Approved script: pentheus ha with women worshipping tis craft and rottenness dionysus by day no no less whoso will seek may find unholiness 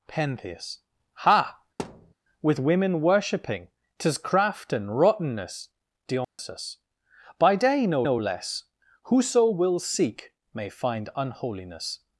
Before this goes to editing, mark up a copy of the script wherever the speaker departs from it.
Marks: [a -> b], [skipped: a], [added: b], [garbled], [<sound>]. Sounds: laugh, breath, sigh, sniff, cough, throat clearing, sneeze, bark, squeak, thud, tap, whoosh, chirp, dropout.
pentheus ha [thud] with women worshipping tis craft and rottenness dionysus [dropout] by day no no less whoso will seek may find unholiness